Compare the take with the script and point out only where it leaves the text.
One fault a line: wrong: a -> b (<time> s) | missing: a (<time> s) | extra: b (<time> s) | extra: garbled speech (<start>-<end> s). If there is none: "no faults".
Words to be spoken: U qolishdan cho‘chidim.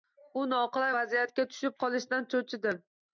extra: noqulay vaziyatga tushib (0.5 s)